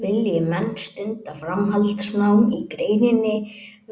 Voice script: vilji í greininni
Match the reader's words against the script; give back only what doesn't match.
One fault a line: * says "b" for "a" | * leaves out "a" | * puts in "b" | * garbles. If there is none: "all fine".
* puts in "menn stunda framhaldsnám"